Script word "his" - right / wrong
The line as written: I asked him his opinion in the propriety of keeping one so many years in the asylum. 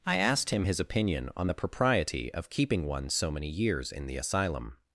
right